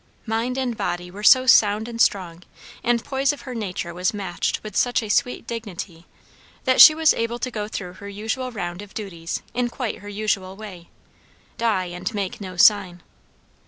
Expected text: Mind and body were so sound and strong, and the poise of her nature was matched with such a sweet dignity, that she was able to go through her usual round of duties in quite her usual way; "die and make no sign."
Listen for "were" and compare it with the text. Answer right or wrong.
right